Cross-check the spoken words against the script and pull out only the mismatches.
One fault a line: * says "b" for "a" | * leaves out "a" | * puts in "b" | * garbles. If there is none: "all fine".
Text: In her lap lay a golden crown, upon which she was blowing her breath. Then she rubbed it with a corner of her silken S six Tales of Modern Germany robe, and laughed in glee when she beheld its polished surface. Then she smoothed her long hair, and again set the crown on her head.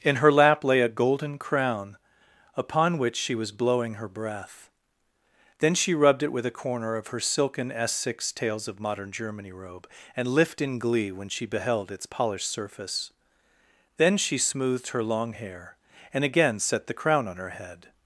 * says "lift" for "laughed"